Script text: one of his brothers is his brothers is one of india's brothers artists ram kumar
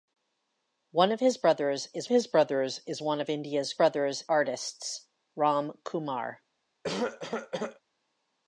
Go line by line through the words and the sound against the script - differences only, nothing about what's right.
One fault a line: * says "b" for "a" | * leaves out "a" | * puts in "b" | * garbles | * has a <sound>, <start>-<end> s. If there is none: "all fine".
* has a cough, 6.8-7.8 s